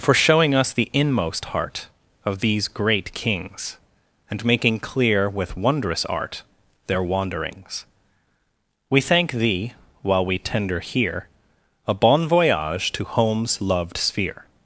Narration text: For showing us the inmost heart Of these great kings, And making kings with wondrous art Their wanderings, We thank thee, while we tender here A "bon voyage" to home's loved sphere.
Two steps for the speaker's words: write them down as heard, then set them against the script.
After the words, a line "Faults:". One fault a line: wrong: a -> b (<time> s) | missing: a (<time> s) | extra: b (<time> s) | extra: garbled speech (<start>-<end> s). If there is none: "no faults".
For showing us the inmost heart Of these great kings, And making clear with wondrous art Their wanderings, We thank thee, while we tender here A "bon voyage" to home's loved sphere.
Faults:
wrong: kings -> clear (4.8 s)